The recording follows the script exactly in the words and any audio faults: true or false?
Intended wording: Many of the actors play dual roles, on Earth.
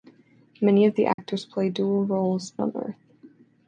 false